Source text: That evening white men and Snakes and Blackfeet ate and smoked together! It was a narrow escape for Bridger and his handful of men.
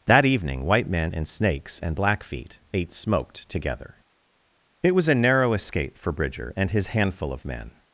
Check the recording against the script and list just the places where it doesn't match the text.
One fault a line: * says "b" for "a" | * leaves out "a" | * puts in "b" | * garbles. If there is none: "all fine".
* leaves out "and"